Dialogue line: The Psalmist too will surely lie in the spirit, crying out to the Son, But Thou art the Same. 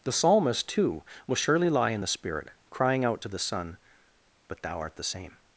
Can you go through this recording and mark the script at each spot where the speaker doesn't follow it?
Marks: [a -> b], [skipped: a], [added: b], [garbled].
The Psalmist too will surely lie in the spirit, crying out to the Son, But Thou art the Same.